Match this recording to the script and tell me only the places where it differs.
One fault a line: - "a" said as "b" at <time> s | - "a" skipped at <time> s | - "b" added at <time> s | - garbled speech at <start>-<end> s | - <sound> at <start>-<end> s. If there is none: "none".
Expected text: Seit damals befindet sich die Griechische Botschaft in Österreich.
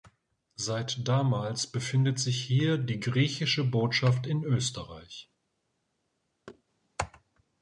- "hier" added at 2.4 s
- thud at 6.5-6.6 s